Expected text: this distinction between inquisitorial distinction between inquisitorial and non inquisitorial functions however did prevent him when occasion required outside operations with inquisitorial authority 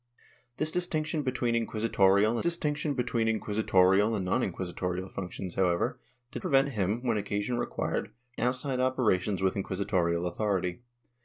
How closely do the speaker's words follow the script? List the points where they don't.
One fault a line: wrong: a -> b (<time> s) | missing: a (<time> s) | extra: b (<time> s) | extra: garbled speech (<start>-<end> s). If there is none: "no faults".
no faults